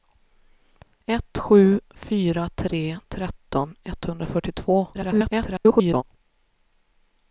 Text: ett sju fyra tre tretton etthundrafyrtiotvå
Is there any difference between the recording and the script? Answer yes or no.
yes